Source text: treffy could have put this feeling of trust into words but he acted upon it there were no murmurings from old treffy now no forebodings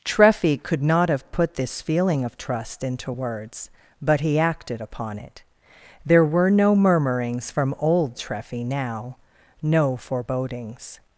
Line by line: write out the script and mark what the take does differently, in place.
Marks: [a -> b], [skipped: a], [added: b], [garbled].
treffy could [added: not] have put this feeling of trust into words but he acted upon it there were no murmurings from old treffy now no forebodings